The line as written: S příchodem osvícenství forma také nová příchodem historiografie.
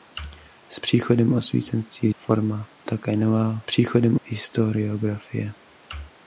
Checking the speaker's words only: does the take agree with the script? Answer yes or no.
yes